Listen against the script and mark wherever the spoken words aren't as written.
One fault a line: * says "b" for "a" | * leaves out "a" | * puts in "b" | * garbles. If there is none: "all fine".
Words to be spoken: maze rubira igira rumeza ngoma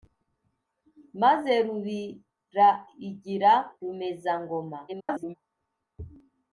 * garbles